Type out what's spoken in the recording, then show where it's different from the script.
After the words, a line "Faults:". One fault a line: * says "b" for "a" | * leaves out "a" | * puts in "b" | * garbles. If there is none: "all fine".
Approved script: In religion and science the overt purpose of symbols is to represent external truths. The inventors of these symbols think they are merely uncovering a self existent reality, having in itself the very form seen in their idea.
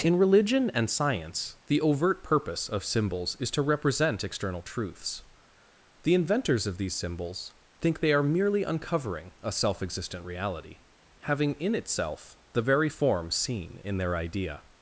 In religion and science the overt purpose of symbols is to represent external truths. The inventors of these symbols think they are merely uncovering a self existent reality, having in itself the very form seen in their idea.
Faults:
all fine